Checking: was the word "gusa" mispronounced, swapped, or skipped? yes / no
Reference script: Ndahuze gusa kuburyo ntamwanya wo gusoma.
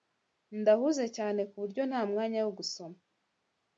yes